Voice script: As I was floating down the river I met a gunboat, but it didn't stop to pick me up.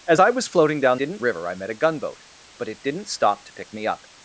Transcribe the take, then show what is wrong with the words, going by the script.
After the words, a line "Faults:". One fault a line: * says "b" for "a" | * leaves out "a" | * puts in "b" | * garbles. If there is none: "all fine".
As I was floating down didn't river I met a gunboat, but it didn't stop to pick me up.
Faults:
* says "didn't" for "the"